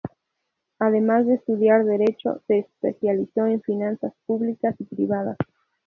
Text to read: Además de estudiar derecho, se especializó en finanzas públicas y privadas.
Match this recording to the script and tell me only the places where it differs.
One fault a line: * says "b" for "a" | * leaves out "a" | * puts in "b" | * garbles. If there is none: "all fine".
all fine